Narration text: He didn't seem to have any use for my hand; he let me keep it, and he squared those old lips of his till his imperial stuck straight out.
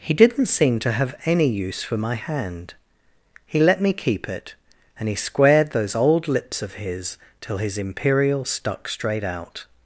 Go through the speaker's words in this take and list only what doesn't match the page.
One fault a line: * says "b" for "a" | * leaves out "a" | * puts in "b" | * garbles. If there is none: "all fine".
all fine